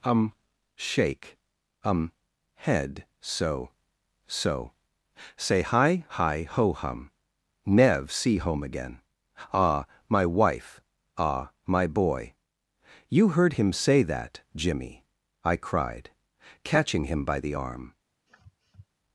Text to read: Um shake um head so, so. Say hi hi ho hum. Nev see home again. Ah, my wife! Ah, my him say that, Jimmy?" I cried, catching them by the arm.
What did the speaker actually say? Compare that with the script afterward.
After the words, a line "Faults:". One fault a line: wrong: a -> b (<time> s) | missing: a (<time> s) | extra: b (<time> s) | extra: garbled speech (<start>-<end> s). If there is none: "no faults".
Um shake um head so, so. Say hi hi ho hum. Nev see home again. Ah, my wife! Ah, my boy!'" "You heard him say that, Jimmy?" I cried, catching him by the arm.
Faults:
extra: boy You heard (11.9 s)
wrong: them -> him (17.1 s)